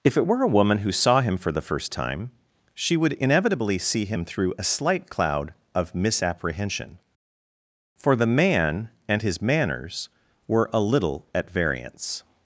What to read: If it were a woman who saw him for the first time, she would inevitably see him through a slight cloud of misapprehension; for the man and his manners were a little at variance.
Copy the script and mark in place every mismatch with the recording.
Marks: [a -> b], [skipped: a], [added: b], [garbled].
If it were a woman who saw him for the first time, she would inevitably see him through a slight cloud of misapprehension; for the man and his manners were a little at variance.